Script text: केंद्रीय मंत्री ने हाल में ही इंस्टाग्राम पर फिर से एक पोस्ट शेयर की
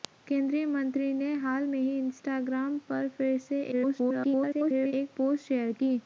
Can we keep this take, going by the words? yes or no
no